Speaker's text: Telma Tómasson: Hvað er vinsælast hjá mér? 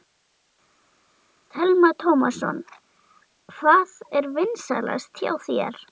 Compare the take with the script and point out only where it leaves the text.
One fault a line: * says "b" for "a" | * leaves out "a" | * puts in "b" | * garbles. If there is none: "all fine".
* says "þér" for "mér"